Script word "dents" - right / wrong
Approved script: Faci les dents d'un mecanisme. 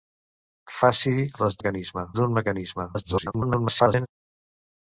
wrong